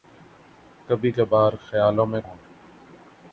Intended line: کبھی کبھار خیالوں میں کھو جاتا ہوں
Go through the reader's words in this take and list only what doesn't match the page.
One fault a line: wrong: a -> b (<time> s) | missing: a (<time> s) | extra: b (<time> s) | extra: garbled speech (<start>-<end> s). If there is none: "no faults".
missing: کھو جاتا (2.2 s)